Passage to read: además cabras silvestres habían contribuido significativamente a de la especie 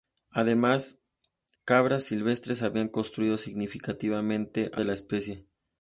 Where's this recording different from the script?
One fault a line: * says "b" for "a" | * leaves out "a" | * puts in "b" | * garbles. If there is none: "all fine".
all fine